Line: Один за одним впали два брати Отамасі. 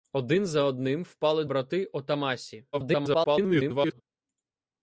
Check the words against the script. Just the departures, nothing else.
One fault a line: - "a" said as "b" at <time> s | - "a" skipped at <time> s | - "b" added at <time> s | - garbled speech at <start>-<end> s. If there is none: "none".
- "два" skipped at 1.4 s
- garbled speech at 2.7-4.0 s